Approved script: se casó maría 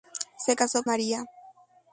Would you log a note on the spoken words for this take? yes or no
no